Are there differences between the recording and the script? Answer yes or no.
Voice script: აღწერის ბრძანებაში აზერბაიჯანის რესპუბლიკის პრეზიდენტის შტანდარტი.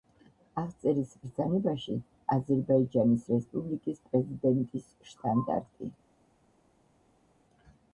no